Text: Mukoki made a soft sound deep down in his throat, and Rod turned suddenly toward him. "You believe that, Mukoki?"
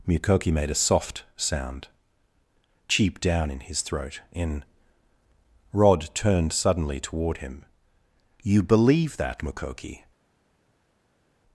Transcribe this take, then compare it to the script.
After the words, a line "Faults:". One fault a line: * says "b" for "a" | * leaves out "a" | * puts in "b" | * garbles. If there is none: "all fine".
Mukoki made a soft sound cheap down in his throat, in Rod turned suddenly toward him. "You believe that, Mukoki?"
Faults:
* says "cheap" for "deep"
* says "in" for "and"